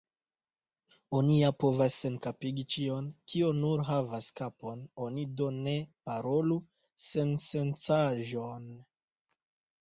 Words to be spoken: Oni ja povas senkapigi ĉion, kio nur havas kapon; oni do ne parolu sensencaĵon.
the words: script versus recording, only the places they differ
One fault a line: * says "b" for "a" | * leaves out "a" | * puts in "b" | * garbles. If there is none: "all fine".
all fine